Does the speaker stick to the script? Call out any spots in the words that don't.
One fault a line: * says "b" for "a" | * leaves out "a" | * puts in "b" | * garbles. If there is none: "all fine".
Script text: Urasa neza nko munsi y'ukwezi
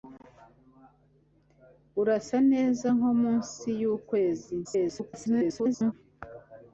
* garbles